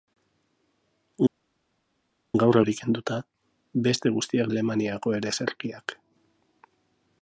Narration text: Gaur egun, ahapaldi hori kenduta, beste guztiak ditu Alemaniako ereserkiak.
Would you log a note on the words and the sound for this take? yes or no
yes